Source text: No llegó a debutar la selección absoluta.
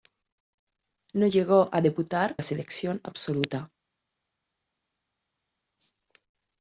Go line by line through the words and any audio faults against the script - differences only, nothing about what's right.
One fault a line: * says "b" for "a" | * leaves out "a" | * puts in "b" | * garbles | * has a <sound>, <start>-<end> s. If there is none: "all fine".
all fine